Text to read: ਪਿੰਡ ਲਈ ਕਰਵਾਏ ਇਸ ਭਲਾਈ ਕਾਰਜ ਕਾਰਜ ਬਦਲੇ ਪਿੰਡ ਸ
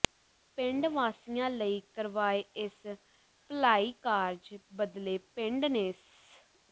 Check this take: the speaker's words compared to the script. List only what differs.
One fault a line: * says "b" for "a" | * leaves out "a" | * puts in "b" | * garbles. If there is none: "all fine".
* puts in "ਵਾਸੀਆਂ"
* leaves out "ਕਾਰਜ"
* puts in "ਨੇ"